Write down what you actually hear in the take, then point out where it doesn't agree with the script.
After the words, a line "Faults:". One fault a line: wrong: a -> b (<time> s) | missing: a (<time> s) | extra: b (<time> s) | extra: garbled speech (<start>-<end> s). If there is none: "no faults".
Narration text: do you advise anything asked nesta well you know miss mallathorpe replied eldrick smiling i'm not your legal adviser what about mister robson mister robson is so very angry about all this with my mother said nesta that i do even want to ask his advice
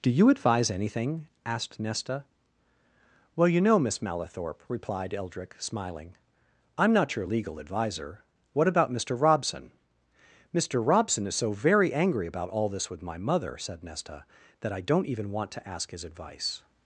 do you advise anything asked nesta well you know miss mallathorpe replied eldrick smiling i'm not your legal adviser what about mister robson mister robson is so very angry about all this with my mother said nesta that i don't even want to ask his advice
Faults:
wrong: do -> don't (14.8 s)